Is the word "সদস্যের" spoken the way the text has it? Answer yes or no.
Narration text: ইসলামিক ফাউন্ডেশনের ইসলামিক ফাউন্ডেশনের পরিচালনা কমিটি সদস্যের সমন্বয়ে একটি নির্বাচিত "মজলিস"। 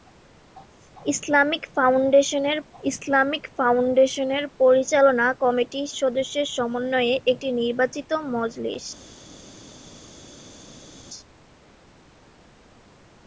yes